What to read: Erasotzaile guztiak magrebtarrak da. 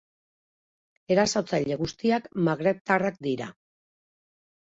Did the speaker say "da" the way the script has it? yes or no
no